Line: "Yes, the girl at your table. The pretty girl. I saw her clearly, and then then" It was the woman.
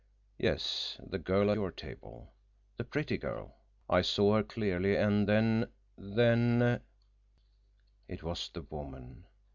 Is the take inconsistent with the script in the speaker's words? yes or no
yes